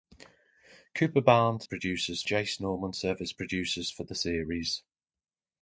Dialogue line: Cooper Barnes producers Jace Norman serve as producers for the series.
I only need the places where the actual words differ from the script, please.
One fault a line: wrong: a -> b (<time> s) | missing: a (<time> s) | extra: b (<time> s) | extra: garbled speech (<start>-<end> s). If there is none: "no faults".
no faults